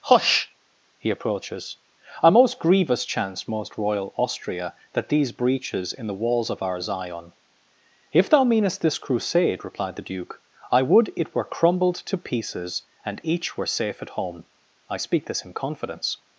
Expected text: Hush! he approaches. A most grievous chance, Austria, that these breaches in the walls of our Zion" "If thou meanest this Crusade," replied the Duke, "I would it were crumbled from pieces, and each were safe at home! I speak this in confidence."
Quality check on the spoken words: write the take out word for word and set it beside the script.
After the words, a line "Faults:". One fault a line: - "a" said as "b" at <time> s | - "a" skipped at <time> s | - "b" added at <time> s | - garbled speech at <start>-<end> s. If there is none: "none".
Hush! he approaches. A most grievous chance, most royal Austria, that these breaches in the walls of our Zion" "If thou meanest this Crusade," replied the Duke, "I would it were crumbled to pieces, and each were safe at home! I speak this in confidence."
Faults:
- "most royal" added at 3.5 s
- "from" said as "to" at 12.0 s